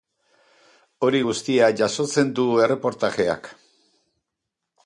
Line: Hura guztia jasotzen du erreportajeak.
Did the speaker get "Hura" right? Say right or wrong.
wrong